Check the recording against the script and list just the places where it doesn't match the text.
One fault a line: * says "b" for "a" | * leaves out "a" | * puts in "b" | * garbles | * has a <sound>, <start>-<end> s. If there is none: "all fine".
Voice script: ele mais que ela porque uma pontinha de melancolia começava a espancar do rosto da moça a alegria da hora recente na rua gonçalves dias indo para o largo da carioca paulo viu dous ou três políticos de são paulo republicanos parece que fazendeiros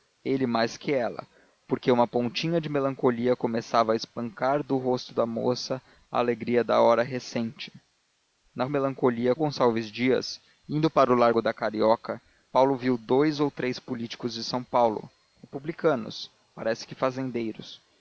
* says "melancolia" for "rua"